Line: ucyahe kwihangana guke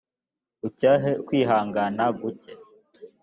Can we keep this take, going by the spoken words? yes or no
yes